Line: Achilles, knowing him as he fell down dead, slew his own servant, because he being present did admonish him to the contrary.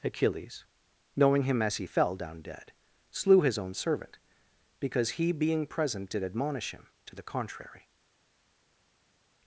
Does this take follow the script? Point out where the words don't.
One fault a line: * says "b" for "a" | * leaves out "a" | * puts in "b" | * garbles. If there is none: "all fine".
all fine